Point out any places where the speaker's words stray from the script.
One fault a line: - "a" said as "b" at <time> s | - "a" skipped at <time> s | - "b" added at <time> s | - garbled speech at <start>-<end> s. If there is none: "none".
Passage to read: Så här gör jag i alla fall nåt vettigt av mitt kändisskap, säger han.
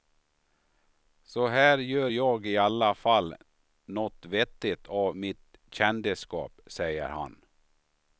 none